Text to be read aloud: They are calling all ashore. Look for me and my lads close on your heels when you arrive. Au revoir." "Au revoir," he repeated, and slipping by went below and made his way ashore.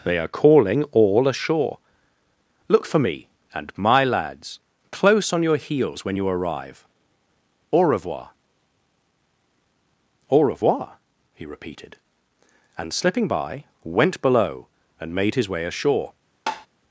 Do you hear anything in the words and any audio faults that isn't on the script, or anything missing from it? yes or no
yes